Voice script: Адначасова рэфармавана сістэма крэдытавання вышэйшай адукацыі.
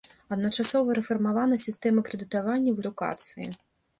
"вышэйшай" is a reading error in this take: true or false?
true